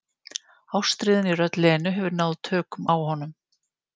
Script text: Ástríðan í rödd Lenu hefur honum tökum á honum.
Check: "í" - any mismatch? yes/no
no